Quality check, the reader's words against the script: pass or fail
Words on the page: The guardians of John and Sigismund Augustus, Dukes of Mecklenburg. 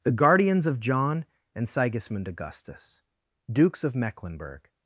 pass